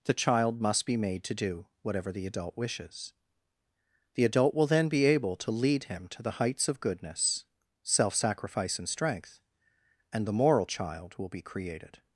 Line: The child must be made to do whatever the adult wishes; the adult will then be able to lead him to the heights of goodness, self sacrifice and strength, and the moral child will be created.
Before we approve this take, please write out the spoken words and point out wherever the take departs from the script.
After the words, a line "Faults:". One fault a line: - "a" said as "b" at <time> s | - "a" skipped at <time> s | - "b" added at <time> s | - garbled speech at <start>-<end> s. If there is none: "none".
The child must be made to do whatever the adult wishes; the adult will then be able to lead him to the heights of goodness, self sacrifice and strength, and the moral child will be created.
Faults:
none